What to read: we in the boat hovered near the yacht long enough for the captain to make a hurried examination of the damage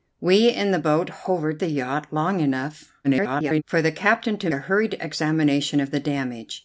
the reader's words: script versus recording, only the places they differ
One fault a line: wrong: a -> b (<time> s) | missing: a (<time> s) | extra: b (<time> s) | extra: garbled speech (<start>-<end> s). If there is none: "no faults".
missing: near (1.6 s)
extra: garbled speech (3.0-3.6 s)
missing: make (4.5 s)